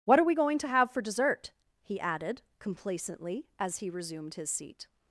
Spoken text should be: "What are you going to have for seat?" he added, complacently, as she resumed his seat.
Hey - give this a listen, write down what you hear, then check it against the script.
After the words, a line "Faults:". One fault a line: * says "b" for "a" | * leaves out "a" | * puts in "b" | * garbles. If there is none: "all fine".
"What are we going to have for dessert?" he added, complacently, as he resumed his seat.
Faults:
* says "we" for "you"
* says "dessert" for "seat"
* says "he" for "she"